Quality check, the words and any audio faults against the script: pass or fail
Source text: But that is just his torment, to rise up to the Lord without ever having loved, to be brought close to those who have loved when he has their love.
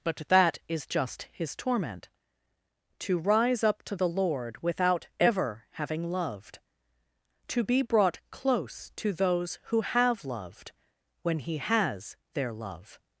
pass